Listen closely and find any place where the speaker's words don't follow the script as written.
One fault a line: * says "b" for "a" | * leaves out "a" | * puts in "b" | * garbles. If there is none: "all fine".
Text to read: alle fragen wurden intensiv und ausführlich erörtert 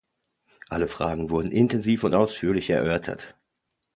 all fine